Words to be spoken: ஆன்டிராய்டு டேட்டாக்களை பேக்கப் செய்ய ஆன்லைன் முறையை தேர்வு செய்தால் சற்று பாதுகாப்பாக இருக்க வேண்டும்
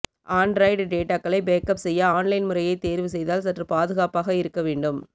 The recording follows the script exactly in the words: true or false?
true